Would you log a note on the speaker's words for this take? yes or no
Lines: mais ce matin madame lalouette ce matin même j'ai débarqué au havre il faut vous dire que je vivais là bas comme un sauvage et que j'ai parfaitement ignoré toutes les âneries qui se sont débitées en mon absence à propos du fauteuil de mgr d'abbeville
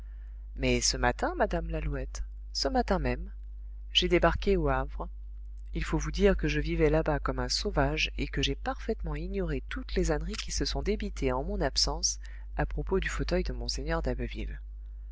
no